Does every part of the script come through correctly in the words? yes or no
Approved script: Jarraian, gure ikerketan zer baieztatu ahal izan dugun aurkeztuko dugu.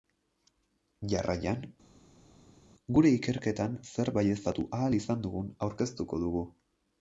yes